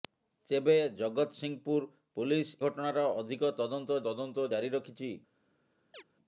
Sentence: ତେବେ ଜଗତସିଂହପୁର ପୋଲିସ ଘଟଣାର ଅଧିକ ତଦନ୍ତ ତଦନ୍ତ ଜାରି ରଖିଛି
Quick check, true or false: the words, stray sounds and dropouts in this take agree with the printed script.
false